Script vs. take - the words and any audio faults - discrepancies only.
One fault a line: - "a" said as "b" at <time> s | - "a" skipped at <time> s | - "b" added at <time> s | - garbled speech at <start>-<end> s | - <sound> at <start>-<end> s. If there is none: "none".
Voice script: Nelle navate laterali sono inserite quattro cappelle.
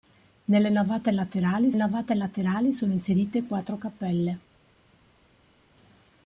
- "navate laterali" added at 1.8 s